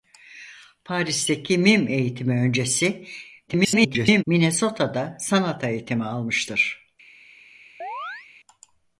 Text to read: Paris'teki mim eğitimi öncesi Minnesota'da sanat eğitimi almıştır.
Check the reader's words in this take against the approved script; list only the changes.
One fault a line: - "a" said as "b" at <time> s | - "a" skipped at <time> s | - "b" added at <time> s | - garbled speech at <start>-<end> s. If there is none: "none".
- garbled speech at 3.5-4.2 s